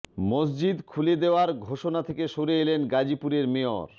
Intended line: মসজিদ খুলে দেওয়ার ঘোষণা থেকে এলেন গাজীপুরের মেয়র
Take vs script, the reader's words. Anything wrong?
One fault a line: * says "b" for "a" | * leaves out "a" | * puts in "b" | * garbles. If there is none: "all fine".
* puts in "সরে"